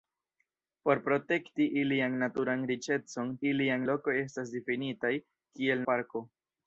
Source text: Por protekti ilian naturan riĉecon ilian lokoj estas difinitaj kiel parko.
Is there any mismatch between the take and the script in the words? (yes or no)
no